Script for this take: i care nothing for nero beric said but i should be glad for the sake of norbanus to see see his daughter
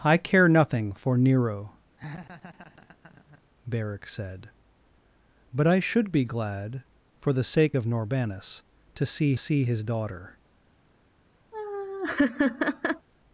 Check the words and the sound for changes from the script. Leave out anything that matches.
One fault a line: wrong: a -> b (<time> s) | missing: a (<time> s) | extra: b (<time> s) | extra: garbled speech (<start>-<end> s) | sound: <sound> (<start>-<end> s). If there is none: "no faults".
sound: laugh (2.0-3.4 s)
sound: laugh (11.5-13.1 s)